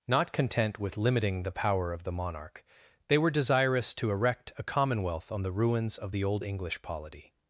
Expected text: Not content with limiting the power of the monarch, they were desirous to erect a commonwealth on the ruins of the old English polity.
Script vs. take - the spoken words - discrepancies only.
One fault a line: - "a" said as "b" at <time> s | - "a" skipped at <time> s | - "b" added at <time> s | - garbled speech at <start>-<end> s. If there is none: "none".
none